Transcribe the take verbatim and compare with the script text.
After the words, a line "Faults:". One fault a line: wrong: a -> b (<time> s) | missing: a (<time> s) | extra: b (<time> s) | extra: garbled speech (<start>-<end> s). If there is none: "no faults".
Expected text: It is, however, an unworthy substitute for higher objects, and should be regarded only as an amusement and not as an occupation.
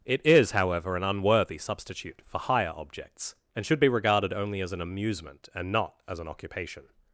It is, however, an unworthy substitute for higher objects, and should be regarded only as an amusement and not as an occupation.
Faults:
no faults